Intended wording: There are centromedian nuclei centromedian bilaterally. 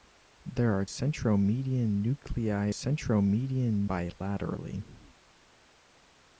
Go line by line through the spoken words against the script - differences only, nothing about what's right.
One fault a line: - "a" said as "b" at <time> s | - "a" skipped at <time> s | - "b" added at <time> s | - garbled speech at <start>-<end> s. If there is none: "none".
none